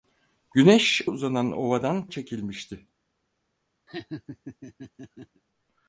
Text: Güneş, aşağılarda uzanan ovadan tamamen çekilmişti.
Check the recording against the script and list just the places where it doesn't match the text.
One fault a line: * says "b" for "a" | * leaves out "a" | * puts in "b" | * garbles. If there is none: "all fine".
* leaves out "aşağılarda"
* leaves out "tamamen"